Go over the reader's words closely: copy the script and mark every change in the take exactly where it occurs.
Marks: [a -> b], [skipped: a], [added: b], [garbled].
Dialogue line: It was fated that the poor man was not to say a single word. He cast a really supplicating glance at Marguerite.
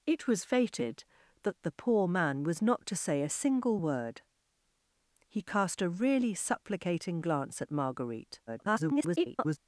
It was fated that the poor man was not to say a single word. He cast a really supplicating glance at Marguerite. [garbled]